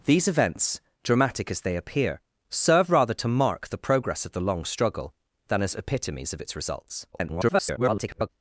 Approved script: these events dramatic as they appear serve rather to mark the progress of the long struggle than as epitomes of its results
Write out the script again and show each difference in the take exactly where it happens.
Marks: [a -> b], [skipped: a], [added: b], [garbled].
these events dramatic as they appear serve rather to mark the progress of the long struggle than as epitomes of its results [garbled]